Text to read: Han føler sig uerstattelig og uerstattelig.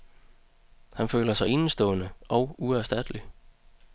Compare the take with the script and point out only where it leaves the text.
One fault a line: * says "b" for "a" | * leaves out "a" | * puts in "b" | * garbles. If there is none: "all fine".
* says "enestående" for "uerstattelig"